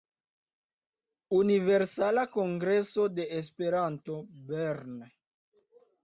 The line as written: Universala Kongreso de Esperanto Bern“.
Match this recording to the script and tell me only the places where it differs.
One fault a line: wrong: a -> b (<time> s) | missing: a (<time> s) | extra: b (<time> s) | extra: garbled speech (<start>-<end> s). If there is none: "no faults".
no faults